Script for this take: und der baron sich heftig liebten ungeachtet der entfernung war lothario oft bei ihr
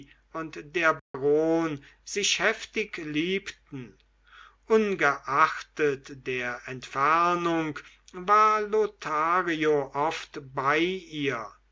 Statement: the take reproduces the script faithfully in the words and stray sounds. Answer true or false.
false